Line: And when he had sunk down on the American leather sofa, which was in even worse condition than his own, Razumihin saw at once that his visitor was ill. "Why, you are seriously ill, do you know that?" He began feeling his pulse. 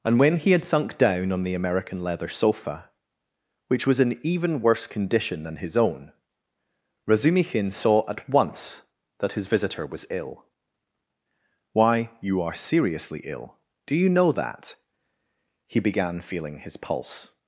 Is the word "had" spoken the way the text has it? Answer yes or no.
yes